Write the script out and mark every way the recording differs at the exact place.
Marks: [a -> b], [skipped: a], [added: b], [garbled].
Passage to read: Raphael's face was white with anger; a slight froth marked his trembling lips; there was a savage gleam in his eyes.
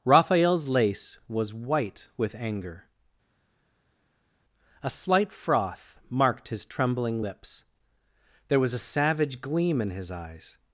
Raphael's [face -> lace] was white with anger; a slight froth marked his trembling lips; there was a savage gleam in his eyes.